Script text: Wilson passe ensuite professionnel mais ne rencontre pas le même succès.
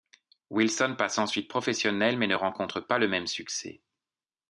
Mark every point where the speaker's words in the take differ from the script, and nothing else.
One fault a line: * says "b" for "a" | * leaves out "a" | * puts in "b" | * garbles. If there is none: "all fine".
all fine